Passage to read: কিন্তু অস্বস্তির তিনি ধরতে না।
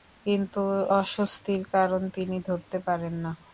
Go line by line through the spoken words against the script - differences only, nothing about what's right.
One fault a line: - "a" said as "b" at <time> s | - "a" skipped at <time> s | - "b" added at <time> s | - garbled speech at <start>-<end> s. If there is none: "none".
- "কারণ" added at 1.7 s
- "পারেন" added at 2.9 s